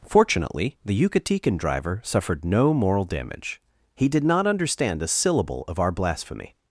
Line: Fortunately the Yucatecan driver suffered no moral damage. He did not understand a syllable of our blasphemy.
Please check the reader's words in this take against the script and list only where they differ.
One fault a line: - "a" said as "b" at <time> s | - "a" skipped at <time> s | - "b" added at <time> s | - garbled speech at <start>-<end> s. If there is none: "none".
none